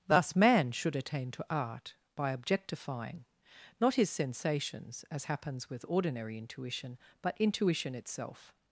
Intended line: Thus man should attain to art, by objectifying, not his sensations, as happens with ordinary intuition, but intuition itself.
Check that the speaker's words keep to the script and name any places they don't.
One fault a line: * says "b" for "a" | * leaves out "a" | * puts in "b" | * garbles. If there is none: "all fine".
all fine